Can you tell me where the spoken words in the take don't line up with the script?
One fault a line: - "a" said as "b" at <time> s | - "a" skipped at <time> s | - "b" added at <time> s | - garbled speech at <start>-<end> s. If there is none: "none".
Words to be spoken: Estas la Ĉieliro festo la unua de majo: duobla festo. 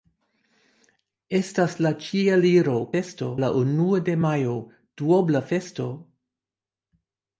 none